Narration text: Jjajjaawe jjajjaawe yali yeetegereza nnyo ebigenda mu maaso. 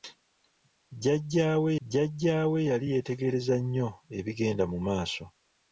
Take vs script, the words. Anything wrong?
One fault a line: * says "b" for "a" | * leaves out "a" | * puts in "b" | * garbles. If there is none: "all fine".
all fine